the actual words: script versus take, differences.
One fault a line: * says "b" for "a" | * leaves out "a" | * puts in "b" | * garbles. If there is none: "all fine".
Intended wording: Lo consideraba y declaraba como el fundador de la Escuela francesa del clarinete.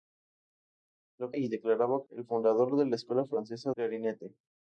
* leaves out "consideraba"
* leaves out "como"
* leaves out "del"